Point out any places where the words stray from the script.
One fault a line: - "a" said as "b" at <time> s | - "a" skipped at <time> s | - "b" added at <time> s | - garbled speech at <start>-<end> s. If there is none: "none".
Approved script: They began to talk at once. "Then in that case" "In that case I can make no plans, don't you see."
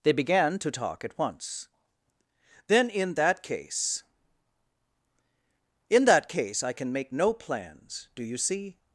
- "don't" said as "do" at 8.2 s